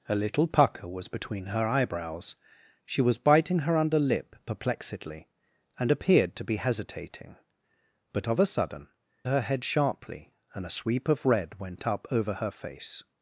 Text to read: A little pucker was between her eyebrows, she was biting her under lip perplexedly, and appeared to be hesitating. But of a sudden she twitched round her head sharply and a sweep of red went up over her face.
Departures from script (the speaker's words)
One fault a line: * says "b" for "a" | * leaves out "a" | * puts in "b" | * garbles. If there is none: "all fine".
* leaves out "she twitched round"